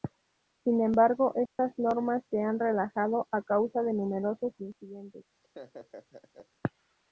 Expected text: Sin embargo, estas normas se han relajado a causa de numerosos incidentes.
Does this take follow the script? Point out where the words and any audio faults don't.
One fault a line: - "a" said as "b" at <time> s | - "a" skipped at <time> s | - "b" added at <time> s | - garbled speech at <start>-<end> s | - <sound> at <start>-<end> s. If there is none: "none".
- dropout at 1.5-1.6 s
- laugh at 5.4-6.5 s